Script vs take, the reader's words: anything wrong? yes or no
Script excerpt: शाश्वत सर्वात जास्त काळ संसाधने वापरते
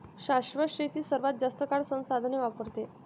yes